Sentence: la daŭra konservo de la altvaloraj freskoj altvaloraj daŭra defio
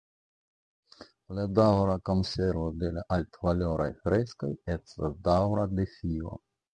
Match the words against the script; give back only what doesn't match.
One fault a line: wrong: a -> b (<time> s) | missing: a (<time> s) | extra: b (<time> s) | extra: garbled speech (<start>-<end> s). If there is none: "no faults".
wrong: altvaloraj -> estas (4.8 s)